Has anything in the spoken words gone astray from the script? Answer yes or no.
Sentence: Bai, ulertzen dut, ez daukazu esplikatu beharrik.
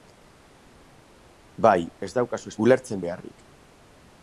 yes